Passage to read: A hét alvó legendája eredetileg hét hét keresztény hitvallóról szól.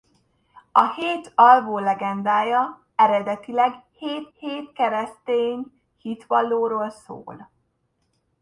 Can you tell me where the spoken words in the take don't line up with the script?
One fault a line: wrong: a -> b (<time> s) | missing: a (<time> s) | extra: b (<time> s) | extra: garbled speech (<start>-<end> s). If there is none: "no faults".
no faults